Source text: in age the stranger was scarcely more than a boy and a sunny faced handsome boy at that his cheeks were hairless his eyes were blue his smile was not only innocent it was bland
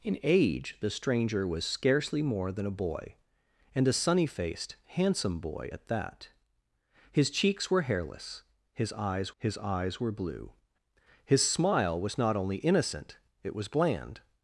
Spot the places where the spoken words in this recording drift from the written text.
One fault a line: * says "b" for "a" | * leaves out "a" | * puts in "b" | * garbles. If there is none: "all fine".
* puts in "his eyes"